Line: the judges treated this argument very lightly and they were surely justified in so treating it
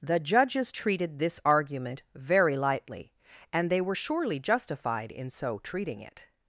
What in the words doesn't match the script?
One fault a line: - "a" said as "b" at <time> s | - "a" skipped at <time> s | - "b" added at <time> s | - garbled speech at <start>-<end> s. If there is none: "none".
none